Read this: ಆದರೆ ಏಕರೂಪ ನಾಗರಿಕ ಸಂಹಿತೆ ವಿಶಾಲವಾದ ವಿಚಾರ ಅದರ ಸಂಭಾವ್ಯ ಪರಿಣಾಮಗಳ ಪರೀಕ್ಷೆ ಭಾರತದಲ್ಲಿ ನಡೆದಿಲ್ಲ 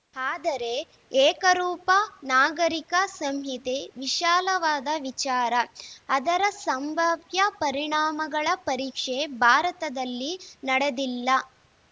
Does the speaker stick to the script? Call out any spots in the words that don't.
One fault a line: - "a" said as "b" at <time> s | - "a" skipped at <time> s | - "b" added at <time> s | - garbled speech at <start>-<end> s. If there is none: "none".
none